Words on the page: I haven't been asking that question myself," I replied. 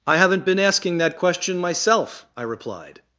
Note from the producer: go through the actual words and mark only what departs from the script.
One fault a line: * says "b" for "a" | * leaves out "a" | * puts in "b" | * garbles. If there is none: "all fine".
all fine